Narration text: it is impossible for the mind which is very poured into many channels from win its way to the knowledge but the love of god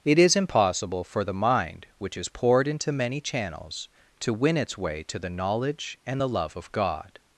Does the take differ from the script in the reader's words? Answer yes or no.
yes